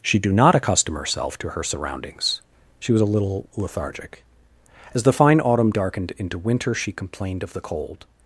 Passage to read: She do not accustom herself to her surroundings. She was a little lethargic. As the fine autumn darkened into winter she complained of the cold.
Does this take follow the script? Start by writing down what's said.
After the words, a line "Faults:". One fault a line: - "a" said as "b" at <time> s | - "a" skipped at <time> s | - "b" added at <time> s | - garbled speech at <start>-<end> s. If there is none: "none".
She do not accustom herself to her surroundings. She was a little lethargic. As the fine autumn darkened into winter she complained of the cold.
Faults:
none